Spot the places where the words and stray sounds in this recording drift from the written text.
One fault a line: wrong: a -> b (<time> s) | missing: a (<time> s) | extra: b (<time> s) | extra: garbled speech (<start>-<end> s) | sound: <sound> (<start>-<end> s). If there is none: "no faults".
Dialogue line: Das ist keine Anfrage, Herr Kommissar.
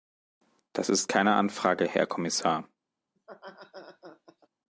sound: laugh (3.2-4.5 s)